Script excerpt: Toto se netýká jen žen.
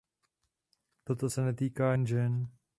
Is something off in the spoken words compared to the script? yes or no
no